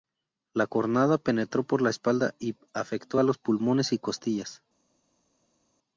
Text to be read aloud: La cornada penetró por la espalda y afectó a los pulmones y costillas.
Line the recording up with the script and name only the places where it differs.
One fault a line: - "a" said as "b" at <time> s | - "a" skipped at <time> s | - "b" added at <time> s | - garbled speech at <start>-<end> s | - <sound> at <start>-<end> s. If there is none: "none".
none